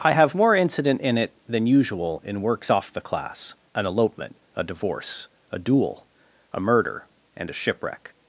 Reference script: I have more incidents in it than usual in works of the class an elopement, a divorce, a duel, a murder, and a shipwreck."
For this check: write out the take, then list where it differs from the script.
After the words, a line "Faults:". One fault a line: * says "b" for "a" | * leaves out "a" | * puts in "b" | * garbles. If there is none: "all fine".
I have more incident in it than usual in works off the class an elopement, a divorce, a duel, a murder, and a shipwreck."
Faults:
* says "incident" for "incidents"
* says "off" for "of"